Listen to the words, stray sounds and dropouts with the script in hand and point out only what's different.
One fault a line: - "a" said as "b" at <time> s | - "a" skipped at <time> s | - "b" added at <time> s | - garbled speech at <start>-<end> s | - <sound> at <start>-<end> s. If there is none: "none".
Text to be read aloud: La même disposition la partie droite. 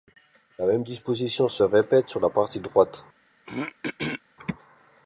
- "se répète sur" added at 1.5 s
- throat clearing at 3.4-4.2 s